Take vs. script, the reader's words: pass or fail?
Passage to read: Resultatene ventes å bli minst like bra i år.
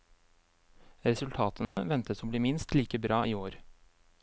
pass